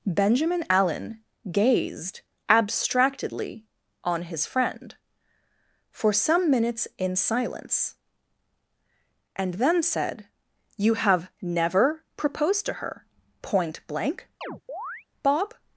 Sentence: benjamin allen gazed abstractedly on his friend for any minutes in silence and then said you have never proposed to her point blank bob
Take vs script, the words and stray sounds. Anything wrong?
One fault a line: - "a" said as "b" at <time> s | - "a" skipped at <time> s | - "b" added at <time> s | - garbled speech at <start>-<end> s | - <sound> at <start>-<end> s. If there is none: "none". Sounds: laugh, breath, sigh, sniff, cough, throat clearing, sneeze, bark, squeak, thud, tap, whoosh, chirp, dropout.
- "any" said as "some" at 6.1 s
- chirp at 14.4-15.1 s